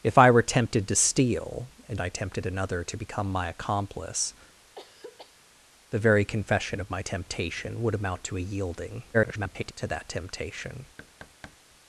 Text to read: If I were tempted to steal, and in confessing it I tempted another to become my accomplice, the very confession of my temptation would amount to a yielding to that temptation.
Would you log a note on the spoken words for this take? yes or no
yes